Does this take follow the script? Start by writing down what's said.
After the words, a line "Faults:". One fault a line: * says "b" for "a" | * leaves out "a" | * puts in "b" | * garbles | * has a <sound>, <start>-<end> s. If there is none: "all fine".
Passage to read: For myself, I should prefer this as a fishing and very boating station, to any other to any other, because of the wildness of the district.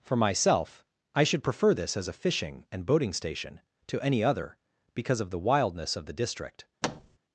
For myself, I should prefer this as a fishing and boating station, to any other, because of the wildness of the district.
Faults:
* leaves out "very"
* leaves out "to any other"
* has a thud, 6.8-7.2 s